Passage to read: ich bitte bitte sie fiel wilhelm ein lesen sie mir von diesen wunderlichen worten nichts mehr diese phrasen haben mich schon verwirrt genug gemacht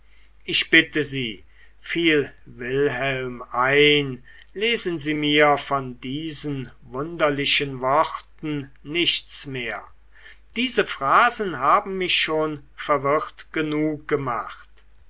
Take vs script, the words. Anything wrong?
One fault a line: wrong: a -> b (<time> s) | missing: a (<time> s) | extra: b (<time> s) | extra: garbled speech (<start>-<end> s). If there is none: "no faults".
missing: bitte (1.0 s)